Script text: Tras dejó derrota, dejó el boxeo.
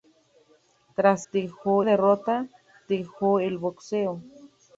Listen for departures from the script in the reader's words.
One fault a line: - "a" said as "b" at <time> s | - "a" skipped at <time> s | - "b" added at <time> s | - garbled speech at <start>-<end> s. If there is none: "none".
none